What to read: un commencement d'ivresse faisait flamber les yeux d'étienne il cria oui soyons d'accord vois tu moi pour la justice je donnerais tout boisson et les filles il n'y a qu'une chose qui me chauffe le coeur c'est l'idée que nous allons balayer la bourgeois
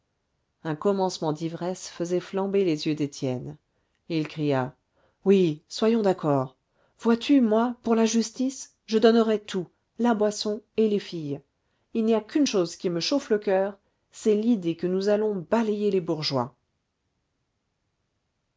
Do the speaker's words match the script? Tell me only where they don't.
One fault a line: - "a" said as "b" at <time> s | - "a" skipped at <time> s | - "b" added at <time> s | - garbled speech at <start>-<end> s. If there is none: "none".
- "la" added at 10.0 s
- "la" said as "les" at 15.9 s